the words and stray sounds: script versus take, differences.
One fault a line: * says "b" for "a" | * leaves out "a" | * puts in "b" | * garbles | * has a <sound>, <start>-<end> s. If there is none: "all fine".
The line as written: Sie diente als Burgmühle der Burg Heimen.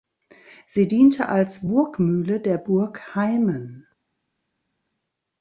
all fine